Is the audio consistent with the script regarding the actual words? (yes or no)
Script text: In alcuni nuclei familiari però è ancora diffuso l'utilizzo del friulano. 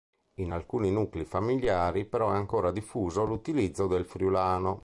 yes